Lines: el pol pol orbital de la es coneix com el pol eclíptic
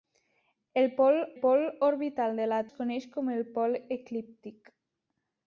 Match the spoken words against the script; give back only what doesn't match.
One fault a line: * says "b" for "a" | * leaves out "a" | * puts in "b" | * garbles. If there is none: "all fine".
all fine